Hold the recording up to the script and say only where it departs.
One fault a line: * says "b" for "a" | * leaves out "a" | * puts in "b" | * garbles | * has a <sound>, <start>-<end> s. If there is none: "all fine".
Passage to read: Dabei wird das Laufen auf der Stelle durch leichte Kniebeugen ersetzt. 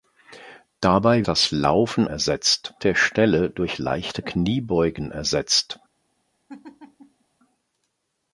* leaves out "wird"
* says "ersetzt" for "auf"
* has a laugh, 6.5-7.2 s